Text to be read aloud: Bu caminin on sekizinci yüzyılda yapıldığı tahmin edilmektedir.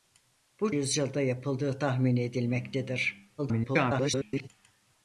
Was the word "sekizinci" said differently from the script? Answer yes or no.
yes